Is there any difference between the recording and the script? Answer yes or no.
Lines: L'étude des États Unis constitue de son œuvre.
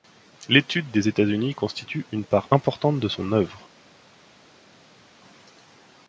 yes